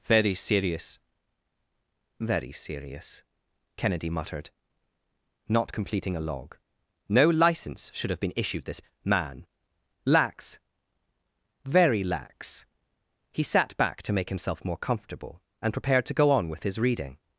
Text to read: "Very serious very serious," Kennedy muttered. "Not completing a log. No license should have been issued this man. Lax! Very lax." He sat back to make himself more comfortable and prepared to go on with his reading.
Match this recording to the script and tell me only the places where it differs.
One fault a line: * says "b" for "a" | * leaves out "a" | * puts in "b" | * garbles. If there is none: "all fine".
all fine